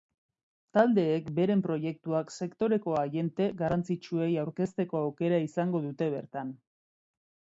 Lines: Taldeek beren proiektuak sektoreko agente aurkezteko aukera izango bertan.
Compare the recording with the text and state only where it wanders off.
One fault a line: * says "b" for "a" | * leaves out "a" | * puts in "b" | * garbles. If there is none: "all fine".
* puts in "garrantzitsuei"
* puts in "dute"